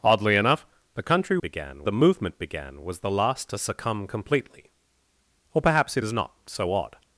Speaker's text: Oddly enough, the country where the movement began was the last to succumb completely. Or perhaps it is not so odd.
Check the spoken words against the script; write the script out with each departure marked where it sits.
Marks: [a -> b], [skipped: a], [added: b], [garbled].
Oddly enough, the country [where -> began] the movement began was the last to succumb completely. Or perhaps it is not so odd.